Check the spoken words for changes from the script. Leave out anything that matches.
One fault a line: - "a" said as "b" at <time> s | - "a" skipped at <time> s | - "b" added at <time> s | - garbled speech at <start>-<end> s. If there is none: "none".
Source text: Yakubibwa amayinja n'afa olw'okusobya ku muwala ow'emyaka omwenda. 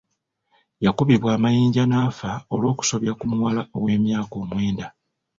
none